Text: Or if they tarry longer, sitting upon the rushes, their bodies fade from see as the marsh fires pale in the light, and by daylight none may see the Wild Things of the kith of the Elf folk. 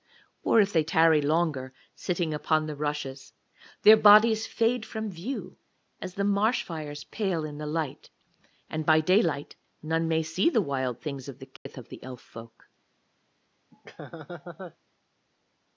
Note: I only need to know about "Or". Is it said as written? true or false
true